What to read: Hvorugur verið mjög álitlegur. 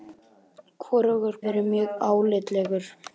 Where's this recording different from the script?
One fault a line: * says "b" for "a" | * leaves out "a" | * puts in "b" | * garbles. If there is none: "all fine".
all fine